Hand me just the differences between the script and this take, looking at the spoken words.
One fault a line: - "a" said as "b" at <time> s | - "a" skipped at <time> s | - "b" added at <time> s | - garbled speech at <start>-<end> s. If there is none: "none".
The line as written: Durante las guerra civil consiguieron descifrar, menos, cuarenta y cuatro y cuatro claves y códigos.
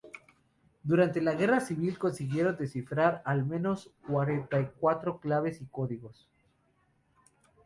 - "las" said as "la" at 1.2 s
- "al" added at 3.2 s
- "y cuatro" skipped at 5.2 s